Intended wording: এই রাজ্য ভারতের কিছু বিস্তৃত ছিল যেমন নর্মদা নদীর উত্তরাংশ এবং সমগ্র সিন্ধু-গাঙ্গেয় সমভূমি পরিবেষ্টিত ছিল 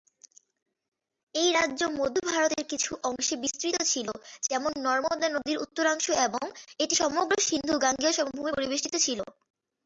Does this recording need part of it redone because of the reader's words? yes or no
yes